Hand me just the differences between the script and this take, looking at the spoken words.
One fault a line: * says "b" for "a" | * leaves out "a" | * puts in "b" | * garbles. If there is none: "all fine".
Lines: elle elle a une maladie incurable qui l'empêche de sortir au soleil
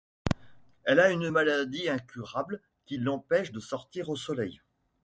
* leaves out "elle"